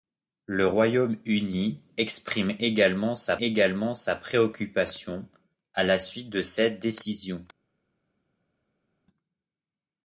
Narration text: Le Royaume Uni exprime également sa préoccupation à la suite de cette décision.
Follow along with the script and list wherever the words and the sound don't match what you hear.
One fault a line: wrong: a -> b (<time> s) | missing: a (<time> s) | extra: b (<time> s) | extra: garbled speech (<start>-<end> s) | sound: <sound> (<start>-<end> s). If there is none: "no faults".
extra: également sa (3.3 s)